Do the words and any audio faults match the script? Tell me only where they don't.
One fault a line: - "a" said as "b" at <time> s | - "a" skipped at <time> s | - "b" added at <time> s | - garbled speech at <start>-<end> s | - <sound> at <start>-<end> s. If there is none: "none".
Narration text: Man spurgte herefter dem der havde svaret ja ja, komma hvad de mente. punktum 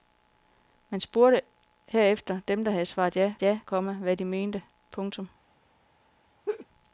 - laugh at 6.5-6.7 s